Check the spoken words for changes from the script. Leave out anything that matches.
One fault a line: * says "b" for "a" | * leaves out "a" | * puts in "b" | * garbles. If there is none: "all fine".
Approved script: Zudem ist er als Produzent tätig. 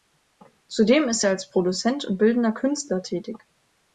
* puts in "und bildender Künstler"